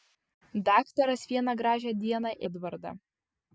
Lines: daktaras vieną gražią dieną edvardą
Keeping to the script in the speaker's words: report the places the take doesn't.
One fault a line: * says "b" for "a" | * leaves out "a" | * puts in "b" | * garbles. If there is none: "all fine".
all fine